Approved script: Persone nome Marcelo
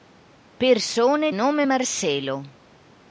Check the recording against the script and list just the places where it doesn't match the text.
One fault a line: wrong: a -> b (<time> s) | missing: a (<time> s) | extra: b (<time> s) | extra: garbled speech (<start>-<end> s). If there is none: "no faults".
no faults